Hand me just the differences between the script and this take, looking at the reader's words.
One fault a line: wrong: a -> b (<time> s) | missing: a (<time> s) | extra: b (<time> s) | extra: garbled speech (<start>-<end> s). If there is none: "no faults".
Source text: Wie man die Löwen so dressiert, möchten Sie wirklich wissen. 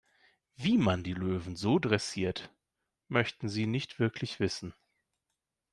extra: nicht (3.7 s)